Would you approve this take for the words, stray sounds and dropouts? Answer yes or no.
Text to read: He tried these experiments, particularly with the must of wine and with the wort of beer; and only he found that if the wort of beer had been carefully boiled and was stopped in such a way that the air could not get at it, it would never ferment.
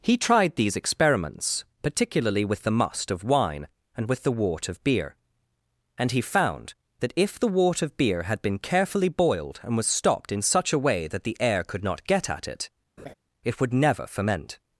no